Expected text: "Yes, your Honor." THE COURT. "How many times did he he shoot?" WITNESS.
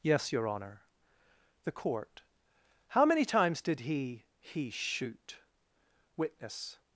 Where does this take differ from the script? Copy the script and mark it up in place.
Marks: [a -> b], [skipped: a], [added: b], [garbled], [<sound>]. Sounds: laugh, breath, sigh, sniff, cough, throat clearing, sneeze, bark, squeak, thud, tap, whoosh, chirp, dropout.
"Yes, your Honor." THE COURT. "How many times did he he shoot?" WITNESS.